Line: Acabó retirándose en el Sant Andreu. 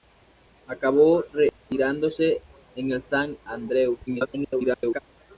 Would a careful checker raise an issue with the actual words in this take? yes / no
yes